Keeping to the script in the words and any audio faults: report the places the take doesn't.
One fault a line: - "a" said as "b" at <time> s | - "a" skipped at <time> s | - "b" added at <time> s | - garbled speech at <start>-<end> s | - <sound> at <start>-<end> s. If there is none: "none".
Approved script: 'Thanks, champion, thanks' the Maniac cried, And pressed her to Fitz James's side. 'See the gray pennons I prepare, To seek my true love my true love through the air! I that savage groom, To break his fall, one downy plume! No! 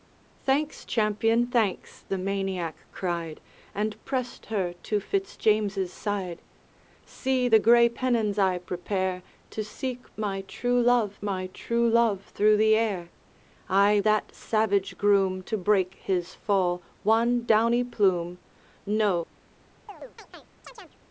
- chirp at 19.9-21.0 s